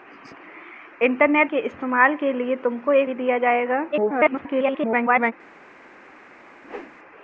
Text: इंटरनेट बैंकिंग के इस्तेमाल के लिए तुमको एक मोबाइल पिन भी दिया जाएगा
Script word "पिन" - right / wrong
wrong